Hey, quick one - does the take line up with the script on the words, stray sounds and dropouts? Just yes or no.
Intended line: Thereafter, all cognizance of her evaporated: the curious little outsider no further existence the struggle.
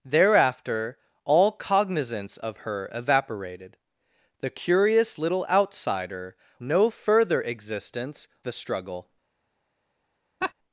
no